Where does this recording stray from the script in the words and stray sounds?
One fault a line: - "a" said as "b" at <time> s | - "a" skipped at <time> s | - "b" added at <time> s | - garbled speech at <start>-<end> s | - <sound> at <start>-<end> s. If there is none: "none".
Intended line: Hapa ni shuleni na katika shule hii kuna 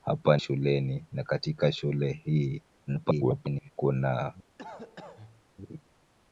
- "ni" skipped at 0.4 s
- garbled speech at 2.9-3.7 s
- cough at 4.6-5.4 s